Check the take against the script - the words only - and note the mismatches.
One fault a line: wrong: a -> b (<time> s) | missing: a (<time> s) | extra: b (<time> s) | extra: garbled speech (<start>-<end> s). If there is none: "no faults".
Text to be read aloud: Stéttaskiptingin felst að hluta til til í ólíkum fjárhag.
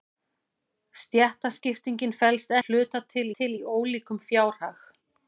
no faults